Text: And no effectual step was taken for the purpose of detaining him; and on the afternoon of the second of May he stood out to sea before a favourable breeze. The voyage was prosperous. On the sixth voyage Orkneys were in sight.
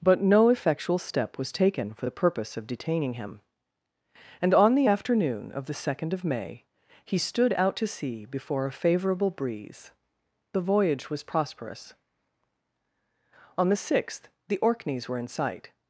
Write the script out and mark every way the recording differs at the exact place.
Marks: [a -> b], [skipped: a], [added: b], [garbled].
[And -> But] no effectual step was taken for the purpose of detaining him; and on the afternoon of the second of May he stood out to sea before a favourable breeze. The voyage was prosperous. On the sixth [voyage -> the] Orkneys were in sight.